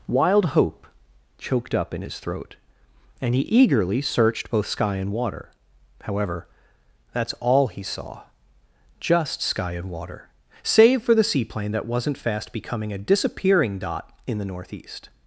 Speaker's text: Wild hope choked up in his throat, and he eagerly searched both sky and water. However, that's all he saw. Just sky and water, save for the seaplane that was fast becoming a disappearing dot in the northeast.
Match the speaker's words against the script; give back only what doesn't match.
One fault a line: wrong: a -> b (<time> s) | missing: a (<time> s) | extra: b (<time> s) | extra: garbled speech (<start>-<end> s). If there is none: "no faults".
wrong: was -> wasn't (11.9 s)